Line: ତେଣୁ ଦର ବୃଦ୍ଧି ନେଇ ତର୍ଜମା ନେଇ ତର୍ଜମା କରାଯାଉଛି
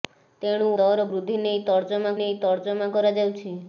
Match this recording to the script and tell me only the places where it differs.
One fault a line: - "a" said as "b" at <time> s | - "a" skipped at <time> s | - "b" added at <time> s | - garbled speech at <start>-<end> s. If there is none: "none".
none